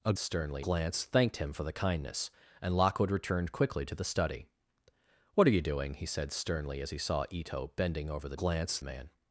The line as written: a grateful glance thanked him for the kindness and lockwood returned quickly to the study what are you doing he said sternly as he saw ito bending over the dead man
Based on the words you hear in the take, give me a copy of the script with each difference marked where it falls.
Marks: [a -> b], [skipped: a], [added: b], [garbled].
a [grateful -> sternly] glance thanked him for the kindness and lockwood returned quickly to the study what are you doing he said sternly as he saw ito bending over the [dead -> glance] man